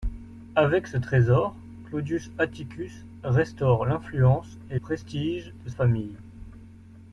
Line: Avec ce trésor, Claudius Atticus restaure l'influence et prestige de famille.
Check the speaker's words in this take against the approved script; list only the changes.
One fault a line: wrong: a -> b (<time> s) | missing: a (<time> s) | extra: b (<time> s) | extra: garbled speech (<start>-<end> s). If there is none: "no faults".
no faults